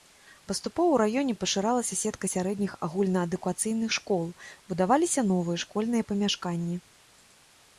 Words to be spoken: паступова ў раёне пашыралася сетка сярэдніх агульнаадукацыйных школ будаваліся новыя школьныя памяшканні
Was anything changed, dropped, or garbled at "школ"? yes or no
no